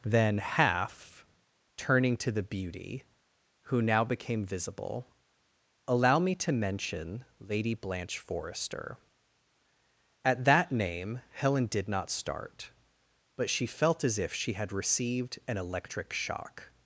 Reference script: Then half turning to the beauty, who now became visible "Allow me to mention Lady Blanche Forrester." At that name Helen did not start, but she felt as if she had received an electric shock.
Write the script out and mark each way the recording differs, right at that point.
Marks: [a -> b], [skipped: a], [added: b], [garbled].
Then half turning to the beauty, who now became visible "Allow me to mention Lady Blanche Forrester." At that name Helen did not start, but she felt as if she had received an electric shock.